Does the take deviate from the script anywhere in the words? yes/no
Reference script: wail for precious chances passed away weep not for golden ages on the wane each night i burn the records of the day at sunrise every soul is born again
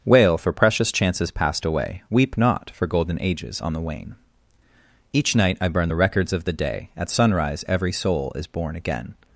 no